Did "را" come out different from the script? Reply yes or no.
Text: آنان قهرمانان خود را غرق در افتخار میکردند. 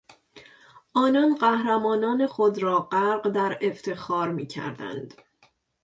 no